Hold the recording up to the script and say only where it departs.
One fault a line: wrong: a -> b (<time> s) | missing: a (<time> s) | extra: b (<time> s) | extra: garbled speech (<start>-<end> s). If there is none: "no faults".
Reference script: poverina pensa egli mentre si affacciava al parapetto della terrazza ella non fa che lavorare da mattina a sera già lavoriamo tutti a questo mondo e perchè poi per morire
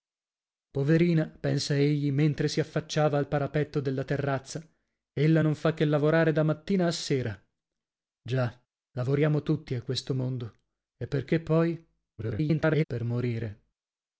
extra: garbled speech (12.2-12.8 s)